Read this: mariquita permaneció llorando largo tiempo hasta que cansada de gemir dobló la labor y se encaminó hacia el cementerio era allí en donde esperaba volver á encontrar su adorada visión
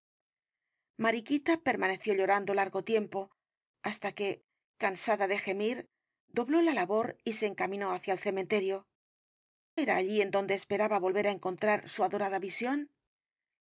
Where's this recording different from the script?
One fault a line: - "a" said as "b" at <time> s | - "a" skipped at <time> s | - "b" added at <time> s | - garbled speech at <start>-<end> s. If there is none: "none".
none